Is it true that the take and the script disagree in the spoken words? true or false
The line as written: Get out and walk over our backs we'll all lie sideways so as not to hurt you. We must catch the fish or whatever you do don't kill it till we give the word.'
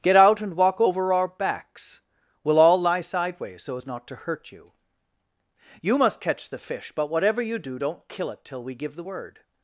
true